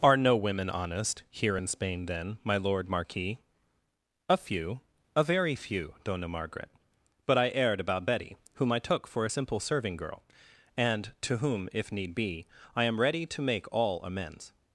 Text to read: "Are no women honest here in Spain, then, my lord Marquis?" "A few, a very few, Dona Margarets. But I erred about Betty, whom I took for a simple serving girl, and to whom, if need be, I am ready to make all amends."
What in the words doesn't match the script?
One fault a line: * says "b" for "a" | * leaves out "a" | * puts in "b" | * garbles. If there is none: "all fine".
* says "Margaret" for "Margarets"